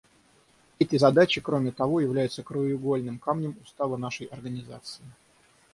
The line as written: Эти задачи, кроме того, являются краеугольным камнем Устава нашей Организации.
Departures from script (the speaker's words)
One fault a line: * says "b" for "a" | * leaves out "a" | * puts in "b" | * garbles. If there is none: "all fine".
all fine